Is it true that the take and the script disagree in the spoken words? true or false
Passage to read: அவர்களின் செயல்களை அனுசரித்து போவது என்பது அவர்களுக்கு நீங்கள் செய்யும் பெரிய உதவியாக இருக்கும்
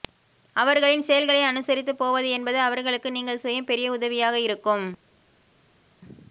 false